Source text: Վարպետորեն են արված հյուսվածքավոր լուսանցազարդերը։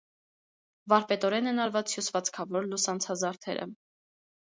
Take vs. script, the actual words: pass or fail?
pass